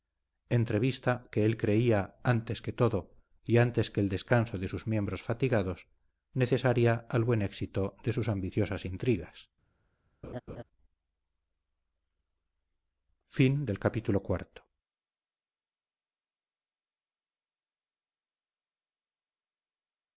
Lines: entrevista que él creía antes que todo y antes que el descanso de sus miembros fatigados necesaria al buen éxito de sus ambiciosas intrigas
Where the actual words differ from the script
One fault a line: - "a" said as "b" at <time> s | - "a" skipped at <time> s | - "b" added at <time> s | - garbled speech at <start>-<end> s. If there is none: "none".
none